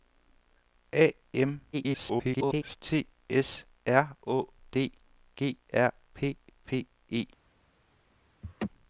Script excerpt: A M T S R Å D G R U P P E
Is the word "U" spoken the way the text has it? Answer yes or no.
no